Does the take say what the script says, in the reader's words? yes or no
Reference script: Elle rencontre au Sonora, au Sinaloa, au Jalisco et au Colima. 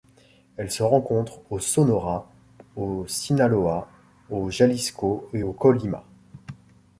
no